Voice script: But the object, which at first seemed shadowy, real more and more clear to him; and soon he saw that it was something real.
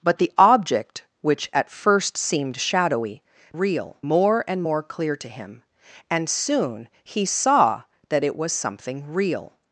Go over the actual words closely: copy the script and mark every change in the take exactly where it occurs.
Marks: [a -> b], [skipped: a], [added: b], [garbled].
But the object, which at first seemed shadowy, real more and more clear to him; and soon he saw that it was something real.